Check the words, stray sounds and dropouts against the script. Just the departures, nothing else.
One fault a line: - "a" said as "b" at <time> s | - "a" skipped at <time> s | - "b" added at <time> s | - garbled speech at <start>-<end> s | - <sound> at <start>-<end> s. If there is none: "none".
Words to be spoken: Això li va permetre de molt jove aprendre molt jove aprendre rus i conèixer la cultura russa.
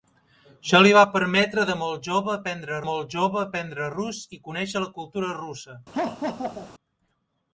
- laugh at 5.9-6.7 s